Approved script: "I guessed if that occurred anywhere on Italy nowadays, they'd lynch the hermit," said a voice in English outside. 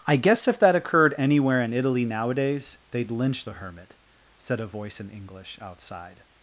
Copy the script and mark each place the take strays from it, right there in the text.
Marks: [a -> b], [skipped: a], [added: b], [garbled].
"I [guessed -> guess] if that occurred anywhere [on -> in] Italy nowadays, they'd lynch the hermit," said a voice in English outside.